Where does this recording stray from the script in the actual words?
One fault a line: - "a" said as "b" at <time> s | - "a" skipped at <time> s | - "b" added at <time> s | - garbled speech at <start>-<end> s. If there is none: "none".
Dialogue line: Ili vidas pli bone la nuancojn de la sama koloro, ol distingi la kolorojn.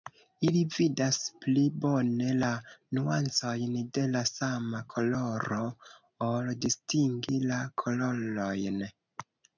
none